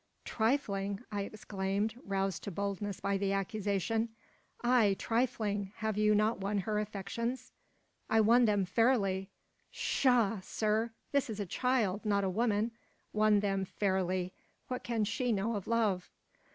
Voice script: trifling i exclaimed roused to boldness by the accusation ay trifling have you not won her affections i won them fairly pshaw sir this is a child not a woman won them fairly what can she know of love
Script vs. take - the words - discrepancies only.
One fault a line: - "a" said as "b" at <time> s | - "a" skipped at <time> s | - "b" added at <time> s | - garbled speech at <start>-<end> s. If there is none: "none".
none